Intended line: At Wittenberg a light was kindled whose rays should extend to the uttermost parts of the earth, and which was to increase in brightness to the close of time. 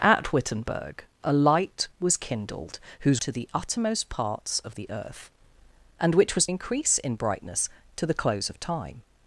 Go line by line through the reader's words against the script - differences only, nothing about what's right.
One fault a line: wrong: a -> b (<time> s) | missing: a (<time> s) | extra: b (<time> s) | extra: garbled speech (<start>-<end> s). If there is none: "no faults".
missing: rays should extend (3.2 s)
missing: to (6.5 s)